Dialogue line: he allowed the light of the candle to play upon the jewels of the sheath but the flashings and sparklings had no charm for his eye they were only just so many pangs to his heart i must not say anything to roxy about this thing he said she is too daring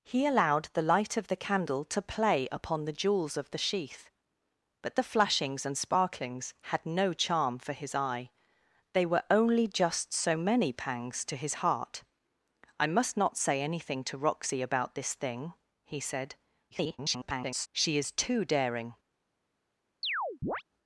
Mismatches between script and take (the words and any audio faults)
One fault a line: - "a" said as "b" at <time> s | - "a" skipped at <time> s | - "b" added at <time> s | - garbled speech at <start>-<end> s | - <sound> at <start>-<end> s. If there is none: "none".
- garbled speech at 16.7-17.7 s
- chirp at 20.0-20.6 s